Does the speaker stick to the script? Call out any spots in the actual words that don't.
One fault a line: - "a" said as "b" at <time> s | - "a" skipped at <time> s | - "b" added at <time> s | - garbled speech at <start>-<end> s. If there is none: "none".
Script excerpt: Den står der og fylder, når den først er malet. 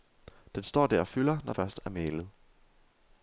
- "den" skipped at 1.5 s